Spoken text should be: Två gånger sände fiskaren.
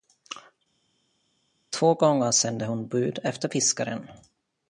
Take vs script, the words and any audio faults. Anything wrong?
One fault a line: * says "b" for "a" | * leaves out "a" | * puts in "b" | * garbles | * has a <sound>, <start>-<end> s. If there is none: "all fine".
* puts in "hon bud efter"